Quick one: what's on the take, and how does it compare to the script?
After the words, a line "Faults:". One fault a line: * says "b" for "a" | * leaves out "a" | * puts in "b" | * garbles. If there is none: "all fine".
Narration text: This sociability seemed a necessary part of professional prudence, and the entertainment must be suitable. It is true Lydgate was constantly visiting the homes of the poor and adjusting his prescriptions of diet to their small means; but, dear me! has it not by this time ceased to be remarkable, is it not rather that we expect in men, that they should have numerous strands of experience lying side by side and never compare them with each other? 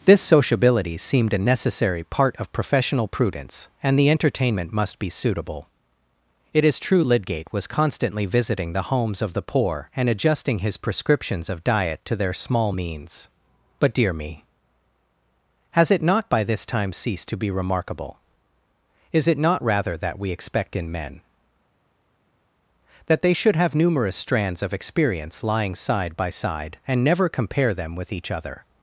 This sociability seemed a necessary part of professional prudence, and the entertainment must be suitable. It is true Lydgate was constantly visiting the homes of the poor and adjusting his prescriptions of diet to their small means; but, dear me! has it not by this time ceased to be remarkable, is it not rather that we expect in men, that they should have numerous strands of experience lying side by side and never compare them with each other?
Faults:
all fine